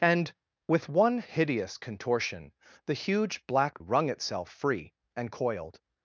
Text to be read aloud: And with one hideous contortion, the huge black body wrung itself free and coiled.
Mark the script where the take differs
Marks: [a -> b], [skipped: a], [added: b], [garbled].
And with one hideous contortion, the huge black [skipped: body] wrung itself free and coiled.